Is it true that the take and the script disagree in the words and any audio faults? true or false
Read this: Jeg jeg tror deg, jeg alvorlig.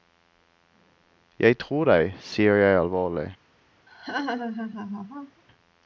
true